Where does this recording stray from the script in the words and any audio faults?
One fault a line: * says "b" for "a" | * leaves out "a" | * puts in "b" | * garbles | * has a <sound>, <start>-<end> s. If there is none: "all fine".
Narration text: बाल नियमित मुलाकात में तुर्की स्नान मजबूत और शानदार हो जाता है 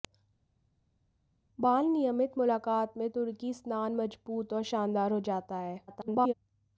* garbles